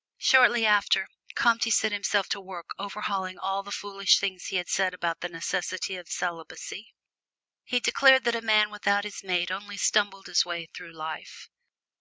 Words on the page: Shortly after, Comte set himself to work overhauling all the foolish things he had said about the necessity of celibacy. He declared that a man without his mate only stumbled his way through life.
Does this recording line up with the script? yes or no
yes